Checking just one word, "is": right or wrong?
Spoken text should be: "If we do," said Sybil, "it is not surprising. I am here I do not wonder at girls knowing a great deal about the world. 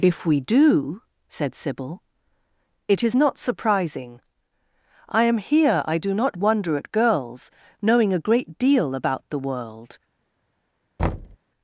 right